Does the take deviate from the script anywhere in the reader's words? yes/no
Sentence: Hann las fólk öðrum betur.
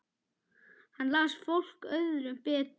no